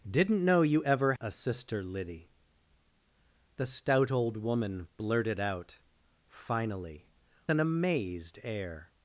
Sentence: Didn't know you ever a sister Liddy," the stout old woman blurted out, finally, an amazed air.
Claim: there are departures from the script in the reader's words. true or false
false